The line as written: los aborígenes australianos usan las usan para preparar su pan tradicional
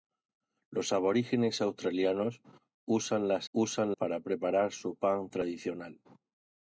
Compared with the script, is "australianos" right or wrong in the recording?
right